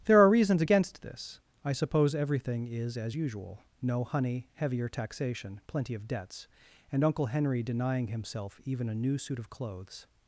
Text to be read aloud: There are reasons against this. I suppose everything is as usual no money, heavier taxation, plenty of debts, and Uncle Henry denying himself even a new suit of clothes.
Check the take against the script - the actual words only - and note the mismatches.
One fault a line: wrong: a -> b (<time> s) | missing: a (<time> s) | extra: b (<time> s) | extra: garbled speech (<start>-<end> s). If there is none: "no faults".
wrong: money -> honey (4.0 s)